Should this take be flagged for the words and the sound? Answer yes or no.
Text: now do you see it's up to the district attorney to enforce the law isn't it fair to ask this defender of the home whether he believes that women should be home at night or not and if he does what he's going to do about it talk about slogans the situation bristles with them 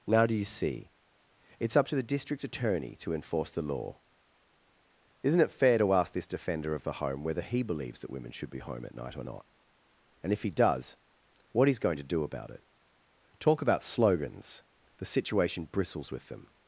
no